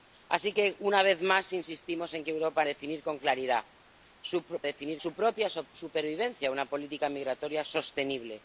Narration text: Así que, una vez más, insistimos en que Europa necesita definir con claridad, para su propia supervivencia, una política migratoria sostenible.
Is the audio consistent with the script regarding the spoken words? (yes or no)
no